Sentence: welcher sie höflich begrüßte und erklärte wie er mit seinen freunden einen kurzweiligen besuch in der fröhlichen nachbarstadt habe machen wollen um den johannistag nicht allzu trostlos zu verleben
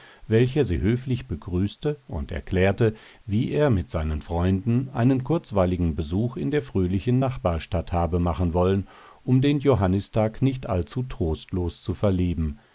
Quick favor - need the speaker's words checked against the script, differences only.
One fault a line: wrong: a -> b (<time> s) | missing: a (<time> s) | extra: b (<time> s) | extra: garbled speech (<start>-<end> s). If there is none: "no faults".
no faults